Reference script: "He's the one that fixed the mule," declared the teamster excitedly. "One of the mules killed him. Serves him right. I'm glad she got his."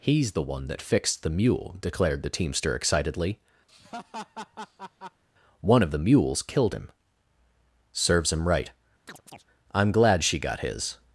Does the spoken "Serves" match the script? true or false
true